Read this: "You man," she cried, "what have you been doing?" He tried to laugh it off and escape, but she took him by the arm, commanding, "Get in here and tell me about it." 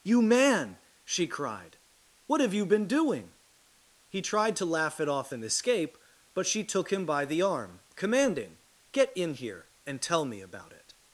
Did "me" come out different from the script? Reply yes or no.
no